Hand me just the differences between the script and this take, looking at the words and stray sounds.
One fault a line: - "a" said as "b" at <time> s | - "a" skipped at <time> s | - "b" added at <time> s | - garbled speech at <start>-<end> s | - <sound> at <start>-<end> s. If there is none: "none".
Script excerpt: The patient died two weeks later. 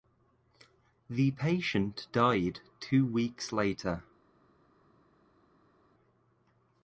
none